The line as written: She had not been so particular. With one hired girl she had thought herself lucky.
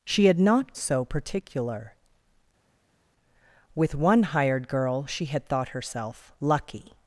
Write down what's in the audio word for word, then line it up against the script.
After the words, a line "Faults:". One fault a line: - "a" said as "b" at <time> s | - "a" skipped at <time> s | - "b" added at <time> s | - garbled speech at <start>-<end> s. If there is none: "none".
She had not so particular. With one hired girl she had thought herself lucky.
Faults:
- "been" skipped at 0.8 s